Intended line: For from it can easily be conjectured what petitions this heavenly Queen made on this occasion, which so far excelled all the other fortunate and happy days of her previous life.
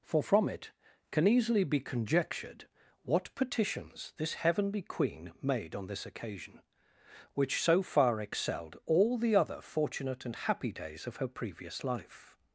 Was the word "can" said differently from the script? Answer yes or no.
no